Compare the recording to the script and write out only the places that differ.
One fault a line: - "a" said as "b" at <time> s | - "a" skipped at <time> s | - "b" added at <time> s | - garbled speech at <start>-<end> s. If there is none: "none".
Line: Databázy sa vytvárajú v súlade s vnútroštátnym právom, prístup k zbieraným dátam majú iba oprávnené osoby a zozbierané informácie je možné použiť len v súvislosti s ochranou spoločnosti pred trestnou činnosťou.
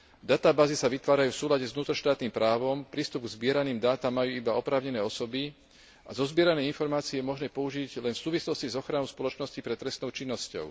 none